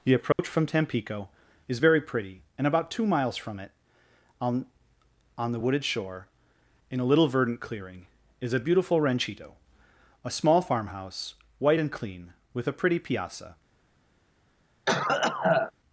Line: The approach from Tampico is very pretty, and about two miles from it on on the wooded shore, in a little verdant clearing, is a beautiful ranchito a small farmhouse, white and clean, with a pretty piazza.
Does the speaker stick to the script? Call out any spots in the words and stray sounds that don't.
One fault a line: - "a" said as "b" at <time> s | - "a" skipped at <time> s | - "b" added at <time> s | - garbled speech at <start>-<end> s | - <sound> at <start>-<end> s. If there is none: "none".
- dropout at 0.3-0.4 s
- cough at 14.9-15.7 s